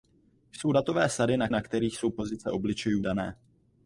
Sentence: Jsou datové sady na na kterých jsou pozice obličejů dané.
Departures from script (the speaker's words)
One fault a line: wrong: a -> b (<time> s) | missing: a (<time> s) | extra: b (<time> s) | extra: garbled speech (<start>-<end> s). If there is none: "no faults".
no faults